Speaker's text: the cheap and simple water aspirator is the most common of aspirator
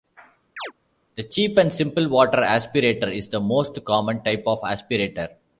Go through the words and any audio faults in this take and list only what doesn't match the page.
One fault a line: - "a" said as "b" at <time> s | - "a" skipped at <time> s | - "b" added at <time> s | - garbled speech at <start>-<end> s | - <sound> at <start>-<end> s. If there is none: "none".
- chirp at 0.6-0.7 s
- "type" added at 4.2 s